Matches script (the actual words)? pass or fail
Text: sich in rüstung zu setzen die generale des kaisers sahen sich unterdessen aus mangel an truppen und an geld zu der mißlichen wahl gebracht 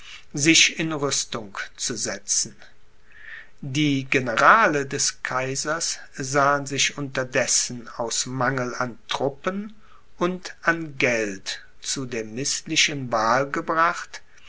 pass